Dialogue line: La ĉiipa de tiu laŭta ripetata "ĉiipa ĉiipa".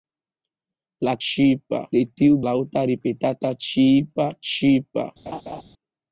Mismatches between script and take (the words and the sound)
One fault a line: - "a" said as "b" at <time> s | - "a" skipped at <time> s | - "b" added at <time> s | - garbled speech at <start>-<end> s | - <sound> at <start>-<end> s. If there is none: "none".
- laugh at 5.3-5.6 s